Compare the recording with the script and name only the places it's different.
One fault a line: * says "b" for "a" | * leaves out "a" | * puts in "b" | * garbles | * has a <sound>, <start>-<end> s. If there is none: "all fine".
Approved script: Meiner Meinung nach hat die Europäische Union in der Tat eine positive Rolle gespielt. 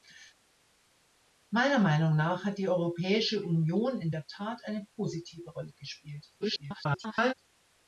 * garbles